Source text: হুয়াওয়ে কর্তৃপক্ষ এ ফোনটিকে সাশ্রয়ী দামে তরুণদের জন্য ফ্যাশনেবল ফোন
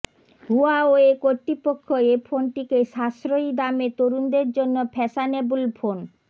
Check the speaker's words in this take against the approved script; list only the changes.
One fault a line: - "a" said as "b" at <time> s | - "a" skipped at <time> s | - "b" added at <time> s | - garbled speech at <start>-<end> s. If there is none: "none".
none